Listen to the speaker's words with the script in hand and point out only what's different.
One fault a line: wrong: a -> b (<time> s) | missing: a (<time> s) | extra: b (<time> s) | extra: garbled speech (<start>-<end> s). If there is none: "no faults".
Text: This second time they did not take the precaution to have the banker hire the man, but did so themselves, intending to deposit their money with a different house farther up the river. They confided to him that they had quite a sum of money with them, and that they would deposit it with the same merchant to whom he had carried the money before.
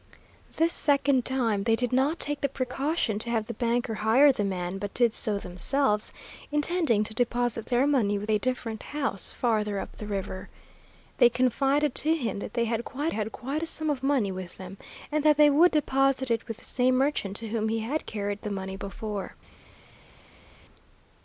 extra: had quite (13.1 s)